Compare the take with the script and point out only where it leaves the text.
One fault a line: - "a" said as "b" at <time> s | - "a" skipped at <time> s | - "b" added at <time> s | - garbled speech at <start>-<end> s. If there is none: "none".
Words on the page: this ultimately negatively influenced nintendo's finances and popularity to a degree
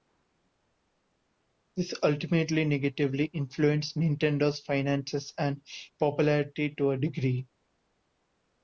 none